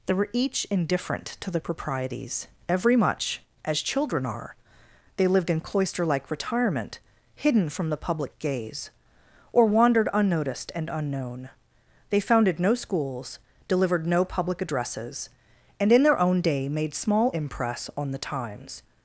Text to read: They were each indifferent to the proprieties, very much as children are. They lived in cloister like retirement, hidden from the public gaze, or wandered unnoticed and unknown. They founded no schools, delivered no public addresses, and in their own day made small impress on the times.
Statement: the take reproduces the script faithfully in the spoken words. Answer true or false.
false